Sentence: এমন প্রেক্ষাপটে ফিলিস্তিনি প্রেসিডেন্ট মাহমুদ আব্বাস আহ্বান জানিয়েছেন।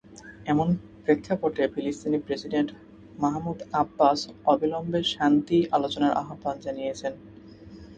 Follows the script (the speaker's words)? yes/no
no